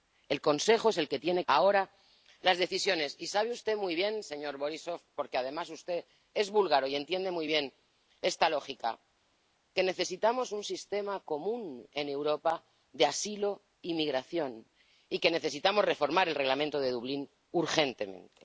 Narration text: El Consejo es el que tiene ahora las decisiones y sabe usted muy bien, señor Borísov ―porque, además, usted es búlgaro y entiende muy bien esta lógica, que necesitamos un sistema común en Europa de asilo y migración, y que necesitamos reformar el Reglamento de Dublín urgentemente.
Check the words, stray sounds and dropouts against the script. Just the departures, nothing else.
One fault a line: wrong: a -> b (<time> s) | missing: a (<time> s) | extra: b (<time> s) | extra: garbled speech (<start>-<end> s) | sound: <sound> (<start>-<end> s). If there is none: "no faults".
no faults